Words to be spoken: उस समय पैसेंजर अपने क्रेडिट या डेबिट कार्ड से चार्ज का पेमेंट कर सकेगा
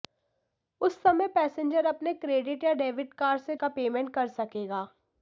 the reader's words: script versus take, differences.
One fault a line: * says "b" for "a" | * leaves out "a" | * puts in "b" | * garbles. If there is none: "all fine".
* leaves out "चार्ज"